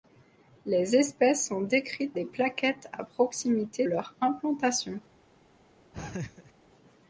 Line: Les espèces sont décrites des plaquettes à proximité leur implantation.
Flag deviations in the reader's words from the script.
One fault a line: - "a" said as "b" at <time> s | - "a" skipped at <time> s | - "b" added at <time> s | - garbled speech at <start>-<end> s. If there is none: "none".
none